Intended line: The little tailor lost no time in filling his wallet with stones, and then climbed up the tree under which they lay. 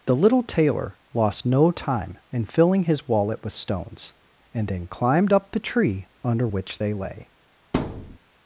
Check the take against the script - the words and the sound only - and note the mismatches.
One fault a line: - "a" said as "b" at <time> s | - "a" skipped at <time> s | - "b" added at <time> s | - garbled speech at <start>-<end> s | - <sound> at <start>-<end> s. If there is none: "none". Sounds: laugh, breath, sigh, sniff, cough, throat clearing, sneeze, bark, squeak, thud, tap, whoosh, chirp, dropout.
- thud at 7.7-8.2 s